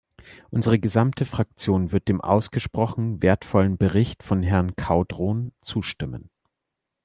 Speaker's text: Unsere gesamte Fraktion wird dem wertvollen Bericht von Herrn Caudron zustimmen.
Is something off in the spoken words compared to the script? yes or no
yes